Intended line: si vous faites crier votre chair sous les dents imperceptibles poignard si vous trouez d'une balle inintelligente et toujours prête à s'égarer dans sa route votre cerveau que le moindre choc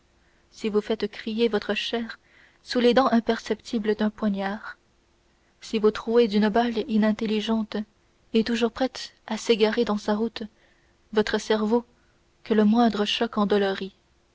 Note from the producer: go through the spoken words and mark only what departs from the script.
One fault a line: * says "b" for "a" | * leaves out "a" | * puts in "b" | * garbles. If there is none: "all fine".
* puts in "d'un"